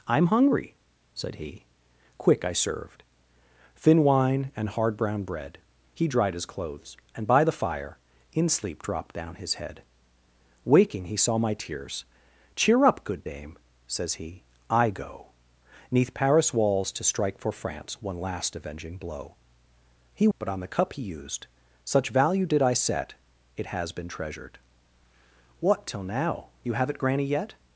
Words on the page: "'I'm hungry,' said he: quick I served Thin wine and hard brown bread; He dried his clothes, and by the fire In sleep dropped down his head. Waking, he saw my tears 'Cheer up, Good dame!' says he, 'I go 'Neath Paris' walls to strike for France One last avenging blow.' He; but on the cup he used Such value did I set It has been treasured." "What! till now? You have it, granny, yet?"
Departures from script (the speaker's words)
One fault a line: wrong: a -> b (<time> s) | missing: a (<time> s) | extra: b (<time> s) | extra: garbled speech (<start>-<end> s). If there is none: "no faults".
no faults